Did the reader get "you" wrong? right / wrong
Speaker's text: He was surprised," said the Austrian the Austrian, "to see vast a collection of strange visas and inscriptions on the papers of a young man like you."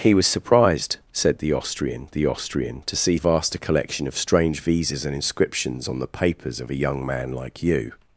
right